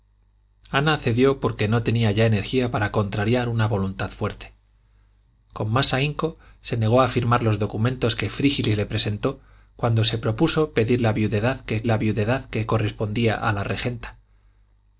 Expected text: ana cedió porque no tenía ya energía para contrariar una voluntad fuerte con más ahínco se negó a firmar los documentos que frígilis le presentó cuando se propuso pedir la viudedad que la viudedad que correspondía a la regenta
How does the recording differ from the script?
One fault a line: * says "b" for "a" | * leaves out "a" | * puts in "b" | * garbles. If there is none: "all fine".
all fine